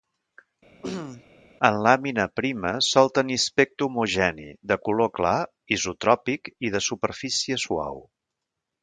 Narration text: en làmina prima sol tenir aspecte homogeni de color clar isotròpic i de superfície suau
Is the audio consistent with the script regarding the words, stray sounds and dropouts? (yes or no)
no